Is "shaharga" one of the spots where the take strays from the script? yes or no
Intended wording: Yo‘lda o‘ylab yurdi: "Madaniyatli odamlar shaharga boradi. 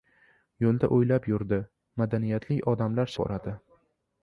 yes